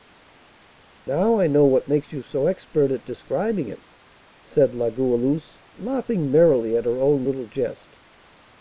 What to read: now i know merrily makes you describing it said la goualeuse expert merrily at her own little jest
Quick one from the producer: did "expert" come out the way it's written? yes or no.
no